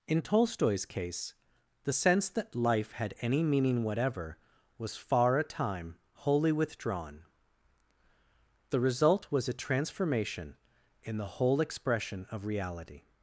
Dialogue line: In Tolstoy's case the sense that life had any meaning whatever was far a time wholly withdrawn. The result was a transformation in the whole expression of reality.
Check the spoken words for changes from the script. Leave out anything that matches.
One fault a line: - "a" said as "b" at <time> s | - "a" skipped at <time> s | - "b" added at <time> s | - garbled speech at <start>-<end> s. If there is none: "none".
none